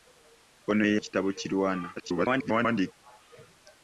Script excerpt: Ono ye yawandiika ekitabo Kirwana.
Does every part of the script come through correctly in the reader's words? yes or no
no